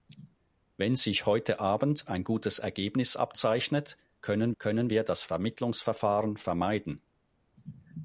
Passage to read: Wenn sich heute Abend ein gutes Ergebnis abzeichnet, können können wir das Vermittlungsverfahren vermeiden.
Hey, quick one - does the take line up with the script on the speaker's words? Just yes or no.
yes